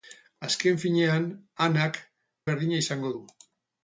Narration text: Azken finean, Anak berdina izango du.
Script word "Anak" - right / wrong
right